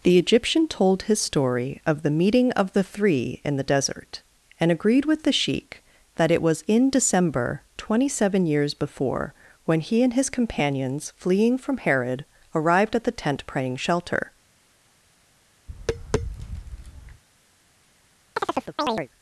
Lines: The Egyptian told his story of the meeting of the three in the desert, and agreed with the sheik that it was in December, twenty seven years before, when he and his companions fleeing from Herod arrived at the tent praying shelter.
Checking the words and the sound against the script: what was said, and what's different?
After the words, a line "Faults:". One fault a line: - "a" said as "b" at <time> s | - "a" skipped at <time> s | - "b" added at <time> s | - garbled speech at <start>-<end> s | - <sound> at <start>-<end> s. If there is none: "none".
The Egyptian told his story of the meeting of the three in the desert, and agreed with the sheik that it was in December, twenty seven years before, when he and his companions fleeing from Herod arrived at the tent praying shelter.
Faults:
- tap at 15.7-17.2 s
- chirp at 18.4-19.1 s